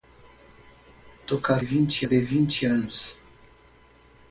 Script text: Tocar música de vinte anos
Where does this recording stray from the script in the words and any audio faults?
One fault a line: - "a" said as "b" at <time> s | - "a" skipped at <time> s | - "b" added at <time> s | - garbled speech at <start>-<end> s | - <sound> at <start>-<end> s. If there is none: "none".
- "música" said as "vinte" at 1.6 s